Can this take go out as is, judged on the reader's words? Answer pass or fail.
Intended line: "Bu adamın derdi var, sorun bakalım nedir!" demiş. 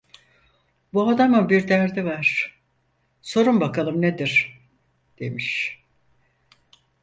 fail